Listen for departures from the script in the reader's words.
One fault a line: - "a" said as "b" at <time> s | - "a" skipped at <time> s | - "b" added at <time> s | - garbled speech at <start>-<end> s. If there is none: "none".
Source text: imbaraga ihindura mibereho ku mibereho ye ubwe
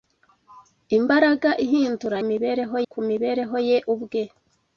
none